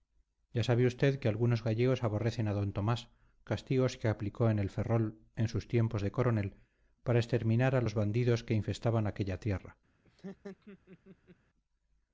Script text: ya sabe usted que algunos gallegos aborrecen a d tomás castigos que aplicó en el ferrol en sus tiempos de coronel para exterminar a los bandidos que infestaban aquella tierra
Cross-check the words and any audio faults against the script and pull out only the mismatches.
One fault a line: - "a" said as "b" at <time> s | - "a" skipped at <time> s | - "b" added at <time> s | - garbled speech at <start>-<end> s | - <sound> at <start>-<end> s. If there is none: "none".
- laugh at 10.0-11.4 s